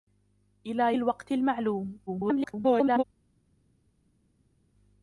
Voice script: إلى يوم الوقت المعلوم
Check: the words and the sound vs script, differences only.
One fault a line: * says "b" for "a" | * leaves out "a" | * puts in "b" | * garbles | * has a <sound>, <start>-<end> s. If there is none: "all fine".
* leaves out "يوم"
* garbles